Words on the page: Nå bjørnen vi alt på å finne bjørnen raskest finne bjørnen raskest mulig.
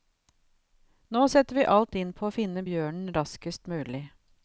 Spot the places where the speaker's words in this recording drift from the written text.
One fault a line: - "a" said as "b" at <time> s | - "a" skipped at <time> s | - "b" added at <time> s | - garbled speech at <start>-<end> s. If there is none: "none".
- "bjørnen" said as "setter" at 1.3 s
- "inn" added at 2.0 s
- "finne bjørnen raskest" skipped at 3.7 s